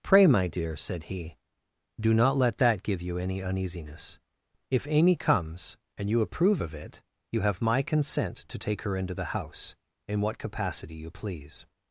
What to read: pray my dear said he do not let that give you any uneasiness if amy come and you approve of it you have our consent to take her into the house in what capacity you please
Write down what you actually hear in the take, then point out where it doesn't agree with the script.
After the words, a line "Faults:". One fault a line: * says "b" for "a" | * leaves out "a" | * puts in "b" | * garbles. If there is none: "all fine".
pray my dear said he do not let that give you any uneasiness if amy comes and you approve of it you have my consent to take her into the house in what capacity you please
Faults:
* says "comes" for "come"
* says "my" for "our"